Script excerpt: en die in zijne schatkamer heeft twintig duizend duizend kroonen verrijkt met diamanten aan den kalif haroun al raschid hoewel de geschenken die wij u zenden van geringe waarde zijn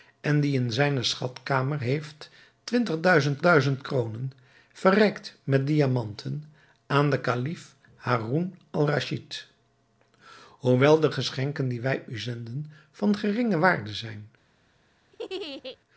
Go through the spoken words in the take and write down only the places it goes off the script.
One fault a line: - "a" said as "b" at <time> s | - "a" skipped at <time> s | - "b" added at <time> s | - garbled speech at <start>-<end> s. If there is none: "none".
none